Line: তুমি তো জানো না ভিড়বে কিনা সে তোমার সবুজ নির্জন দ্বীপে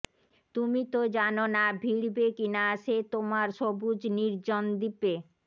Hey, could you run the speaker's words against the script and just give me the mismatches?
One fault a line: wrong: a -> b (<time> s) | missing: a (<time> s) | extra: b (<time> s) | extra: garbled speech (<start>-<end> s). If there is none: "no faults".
no faults